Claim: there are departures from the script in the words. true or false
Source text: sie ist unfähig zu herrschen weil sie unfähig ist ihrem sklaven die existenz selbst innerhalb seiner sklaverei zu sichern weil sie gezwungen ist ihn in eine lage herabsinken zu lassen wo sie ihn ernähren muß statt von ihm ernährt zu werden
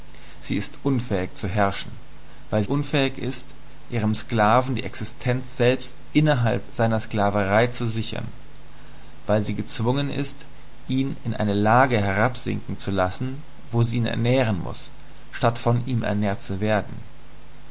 true